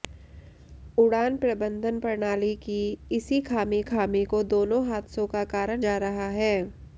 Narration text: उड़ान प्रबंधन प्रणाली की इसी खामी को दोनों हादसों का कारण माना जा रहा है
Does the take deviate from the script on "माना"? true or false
true